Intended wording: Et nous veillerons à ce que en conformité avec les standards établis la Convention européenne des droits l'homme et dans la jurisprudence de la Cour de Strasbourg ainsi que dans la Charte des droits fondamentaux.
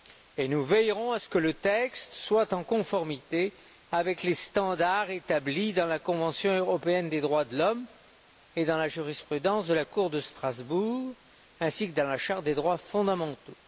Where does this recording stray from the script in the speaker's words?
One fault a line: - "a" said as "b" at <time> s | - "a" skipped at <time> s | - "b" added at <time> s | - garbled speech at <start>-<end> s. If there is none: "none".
- "le texte soit" added at 1.4 s
- "dans" added at 5.7 s
- "de" added at 7.5 s